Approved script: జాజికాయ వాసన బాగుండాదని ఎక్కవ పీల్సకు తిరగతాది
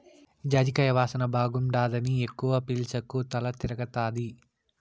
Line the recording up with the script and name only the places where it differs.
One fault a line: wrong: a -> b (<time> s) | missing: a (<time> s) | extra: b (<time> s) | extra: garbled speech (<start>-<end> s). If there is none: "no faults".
extra: తల (3.3 s)